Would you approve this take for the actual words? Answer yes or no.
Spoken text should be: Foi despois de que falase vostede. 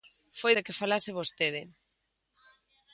no